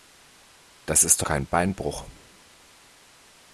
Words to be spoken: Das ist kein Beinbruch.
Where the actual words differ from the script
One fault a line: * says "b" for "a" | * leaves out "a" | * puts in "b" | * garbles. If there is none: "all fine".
all fine